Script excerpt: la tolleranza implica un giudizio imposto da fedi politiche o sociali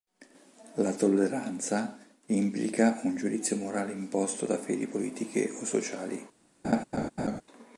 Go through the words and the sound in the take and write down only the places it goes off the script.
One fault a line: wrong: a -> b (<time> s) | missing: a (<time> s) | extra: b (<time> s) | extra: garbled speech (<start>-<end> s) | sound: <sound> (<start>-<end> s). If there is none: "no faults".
extra: morale (3.6 s)
sound: laugh (6.6-7.4 s)